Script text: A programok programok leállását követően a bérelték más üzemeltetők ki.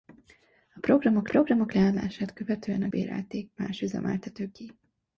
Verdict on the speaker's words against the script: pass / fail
pass